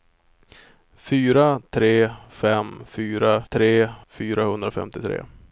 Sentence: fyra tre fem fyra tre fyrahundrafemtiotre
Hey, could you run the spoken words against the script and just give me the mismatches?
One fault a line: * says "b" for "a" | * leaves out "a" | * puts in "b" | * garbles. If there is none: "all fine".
all fine